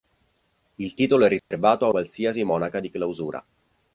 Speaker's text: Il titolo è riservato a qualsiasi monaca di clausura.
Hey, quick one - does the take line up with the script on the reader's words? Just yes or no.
yes